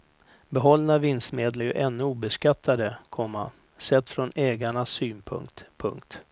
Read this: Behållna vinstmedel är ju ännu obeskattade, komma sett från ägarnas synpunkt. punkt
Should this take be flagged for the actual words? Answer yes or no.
yes